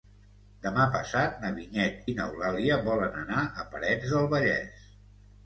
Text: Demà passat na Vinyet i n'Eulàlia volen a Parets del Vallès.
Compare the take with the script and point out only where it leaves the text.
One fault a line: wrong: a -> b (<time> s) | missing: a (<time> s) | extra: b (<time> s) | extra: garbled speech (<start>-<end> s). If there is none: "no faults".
extra: anar (3.2 s)